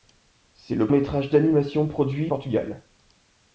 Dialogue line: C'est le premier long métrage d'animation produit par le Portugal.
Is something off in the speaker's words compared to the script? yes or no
yes